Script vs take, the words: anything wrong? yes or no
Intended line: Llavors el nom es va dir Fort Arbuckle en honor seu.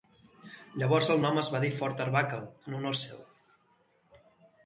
no